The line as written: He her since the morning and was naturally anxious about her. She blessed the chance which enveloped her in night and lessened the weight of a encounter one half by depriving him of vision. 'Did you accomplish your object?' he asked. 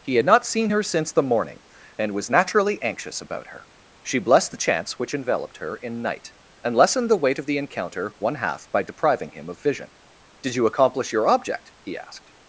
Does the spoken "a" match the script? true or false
false